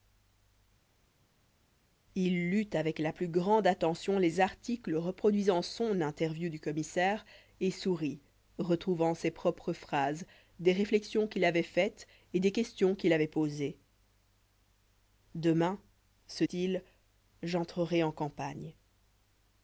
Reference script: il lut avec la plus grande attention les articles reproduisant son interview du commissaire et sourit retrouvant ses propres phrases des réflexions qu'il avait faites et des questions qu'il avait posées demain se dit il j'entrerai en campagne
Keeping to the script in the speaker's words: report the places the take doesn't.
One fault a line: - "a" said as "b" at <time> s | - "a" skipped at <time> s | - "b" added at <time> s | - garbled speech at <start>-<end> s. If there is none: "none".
- "dit" skipped at 16.4 s